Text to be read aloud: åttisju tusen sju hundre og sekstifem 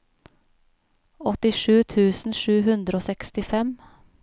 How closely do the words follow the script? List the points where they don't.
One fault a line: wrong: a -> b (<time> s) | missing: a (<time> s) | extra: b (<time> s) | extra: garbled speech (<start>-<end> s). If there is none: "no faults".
no faults